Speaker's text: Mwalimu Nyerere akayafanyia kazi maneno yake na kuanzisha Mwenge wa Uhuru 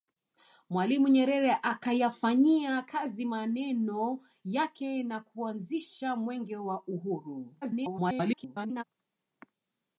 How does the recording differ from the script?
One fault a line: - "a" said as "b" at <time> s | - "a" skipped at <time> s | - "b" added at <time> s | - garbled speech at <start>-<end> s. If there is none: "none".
- garbled speech at 7.6-8.8 s